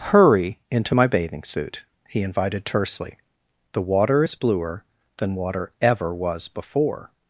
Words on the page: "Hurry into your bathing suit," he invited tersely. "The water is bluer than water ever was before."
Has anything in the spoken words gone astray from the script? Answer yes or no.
yes